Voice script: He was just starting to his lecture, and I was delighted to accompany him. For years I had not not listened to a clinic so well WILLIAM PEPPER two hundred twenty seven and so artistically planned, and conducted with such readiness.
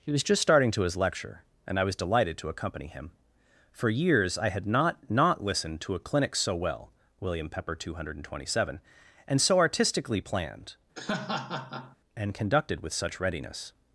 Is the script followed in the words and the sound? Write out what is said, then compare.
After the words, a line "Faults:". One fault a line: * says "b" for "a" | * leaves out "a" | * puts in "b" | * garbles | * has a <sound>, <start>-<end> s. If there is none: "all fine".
He was just starting to his lecture, and I was delighted to accompany him. For years I had not not listened to a clinic so well WILLIAM PEPPER two hundred twenty seven and so artistically planned, and conducted with such readiness.
Faults:
* has a laugh, 11.0-12.0 s